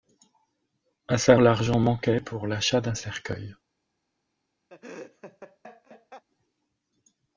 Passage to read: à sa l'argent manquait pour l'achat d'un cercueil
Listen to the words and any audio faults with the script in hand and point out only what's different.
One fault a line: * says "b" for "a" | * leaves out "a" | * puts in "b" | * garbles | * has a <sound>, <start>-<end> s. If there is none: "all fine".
* has a laugh, 4.7-6.2 s